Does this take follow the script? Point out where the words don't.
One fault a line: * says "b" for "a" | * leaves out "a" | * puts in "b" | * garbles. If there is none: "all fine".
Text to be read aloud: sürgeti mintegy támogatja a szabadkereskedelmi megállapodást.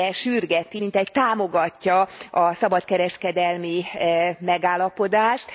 all fine